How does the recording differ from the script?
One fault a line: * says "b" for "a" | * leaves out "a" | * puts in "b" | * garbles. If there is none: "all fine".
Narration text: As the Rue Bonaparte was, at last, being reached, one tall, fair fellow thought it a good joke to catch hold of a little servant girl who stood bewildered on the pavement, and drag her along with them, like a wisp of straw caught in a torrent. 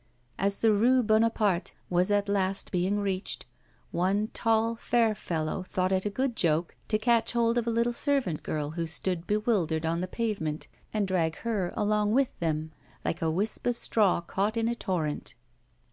all fine